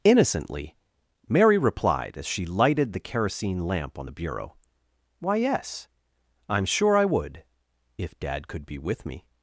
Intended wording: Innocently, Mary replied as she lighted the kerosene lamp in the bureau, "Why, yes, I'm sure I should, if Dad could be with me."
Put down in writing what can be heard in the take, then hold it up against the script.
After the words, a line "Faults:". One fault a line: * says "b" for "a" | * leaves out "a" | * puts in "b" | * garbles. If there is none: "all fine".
Innocently, Mary replied as she lighted the kerosene lamp on the bureau, "Why, yes, I'm sure I would, if Dad could be with me."
Faults:
* says "on" for "in"
* says "would" for "should"